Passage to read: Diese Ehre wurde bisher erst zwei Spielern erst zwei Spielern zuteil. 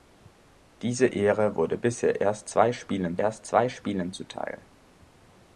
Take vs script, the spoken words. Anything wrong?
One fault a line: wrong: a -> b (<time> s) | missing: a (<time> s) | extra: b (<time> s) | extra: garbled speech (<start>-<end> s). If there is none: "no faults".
no faults